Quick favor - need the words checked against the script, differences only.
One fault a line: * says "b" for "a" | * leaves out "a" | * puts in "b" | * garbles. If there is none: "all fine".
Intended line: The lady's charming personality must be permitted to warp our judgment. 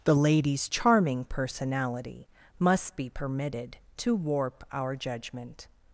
all fine